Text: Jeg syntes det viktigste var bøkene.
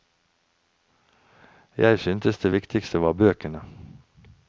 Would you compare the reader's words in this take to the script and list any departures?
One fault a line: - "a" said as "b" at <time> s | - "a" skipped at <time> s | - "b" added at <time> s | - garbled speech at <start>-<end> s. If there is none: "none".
none